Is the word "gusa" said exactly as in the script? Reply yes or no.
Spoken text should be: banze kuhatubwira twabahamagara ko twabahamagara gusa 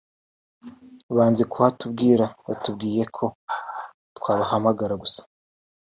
yes